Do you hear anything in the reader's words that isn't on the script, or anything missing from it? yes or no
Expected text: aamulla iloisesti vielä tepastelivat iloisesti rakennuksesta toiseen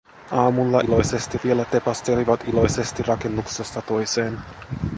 no